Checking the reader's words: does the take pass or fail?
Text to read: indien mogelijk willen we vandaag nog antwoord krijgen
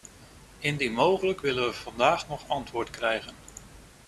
pass